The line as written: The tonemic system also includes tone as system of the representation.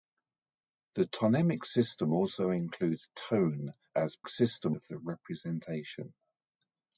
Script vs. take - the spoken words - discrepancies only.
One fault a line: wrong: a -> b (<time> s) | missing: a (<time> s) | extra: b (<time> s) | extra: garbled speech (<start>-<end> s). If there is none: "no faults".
no faults